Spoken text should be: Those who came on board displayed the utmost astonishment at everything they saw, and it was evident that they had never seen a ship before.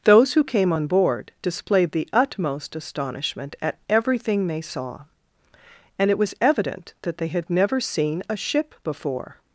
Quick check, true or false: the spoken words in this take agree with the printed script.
true